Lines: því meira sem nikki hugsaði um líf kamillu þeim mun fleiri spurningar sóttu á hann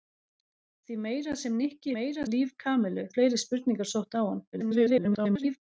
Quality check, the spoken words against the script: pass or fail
fail